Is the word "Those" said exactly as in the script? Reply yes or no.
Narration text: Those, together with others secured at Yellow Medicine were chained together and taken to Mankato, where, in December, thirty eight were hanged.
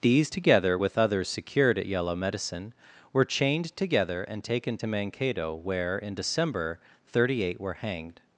no